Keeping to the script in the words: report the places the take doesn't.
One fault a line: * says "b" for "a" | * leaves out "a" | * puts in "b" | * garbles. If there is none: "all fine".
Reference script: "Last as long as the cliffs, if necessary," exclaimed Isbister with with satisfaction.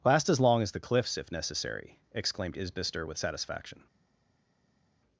* leaves out "with"